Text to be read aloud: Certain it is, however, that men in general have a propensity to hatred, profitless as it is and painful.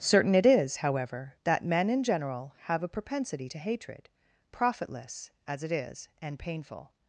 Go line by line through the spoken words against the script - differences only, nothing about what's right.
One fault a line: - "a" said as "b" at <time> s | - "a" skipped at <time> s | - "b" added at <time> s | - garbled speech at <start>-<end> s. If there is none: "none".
none